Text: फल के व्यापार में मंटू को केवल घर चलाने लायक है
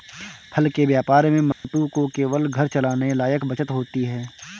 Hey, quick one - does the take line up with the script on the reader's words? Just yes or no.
no